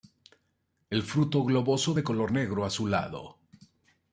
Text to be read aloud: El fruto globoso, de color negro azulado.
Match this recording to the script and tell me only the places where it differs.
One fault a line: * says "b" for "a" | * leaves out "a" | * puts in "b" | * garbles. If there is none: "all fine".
all fine